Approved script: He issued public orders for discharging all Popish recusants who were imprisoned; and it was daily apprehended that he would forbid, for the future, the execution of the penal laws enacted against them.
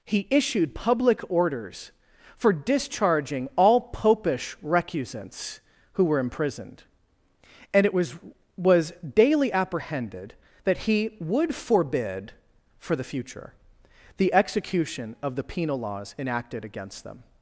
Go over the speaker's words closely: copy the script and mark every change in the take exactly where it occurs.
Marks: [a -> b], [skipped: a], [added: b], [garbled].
He issued public orders for discharging all Popish recusants who were imprisoned; and it was [added: was] daily apprehended that he would forbid, for the future, the execution of the penal laws enacted against them.